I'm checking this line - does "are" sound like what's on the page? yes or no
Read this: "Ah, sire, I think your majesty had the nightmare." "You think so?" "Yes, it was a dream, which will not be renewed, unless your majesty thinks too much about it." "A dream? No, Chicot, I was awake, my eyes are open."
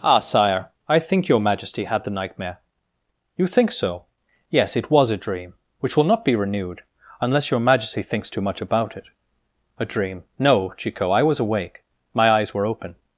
no